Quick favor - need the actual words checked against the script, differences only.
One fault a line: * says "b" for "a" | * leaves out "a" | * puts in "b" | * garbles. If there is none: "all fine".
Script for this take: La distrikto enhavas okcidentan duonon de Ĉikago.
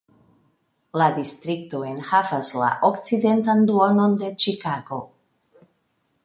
* puts in "la"